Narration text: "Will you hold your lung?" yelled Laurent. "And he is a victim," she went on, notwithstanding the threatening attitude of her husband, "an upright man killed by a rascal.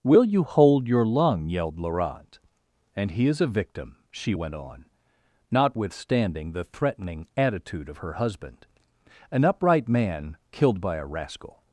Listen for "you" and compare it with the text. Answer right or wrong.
right